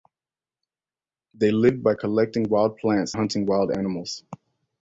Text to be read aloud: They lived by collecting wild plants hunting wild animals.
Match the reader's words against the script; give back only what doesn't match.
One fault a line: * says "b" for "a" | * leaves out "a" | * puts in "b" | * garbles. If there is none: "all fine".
all fine